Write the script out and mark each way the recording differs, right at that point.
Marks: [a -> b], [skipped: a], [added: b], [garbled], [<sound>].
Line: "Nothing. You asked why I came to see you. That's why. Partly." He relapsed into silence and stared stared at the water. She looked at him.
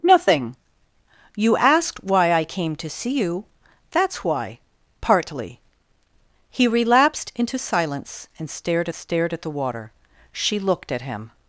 "Nothing. You asked why I came to see you. That's why. Partly." He relapsed into silence and stared stared at the water. She looked at him.